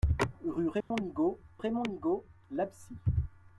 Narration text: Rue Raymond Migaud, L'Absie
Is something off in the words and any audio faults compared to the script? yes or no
yes